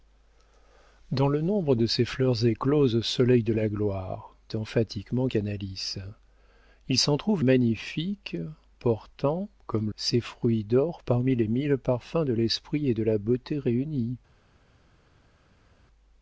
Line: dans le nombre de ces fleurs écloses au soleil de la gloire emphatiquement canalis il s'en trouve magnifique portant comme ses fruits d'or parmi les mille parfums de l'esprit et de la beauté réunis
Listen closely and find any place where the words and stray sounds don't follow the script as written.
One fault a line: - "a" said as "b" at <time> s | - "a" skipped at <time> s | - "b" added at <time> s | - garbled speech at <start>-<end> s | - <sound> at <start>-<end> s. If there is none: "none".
none